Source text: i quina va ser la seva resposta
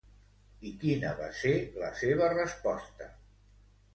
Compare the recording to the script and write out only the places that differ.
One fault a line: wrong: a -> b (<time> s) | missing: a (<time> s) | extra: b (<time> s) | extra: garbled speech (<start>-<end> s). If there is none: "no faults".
no faults